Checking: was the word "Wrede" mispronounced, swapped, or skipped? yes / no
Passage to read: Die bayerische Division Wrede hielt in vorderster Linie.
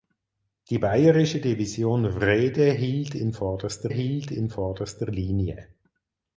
no